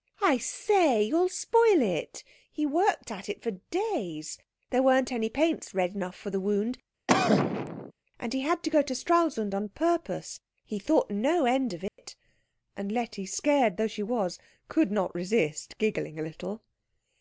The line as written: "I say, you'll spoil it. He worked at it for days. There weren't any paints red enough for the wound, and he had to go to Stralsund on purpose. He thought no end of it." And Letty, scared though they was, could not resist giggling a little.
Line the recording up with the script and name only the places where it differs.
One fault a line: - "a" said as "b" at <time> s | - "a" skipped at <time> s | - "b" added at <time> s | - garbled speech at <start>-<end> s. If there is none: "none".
- "they" said as "she" at 13.9 s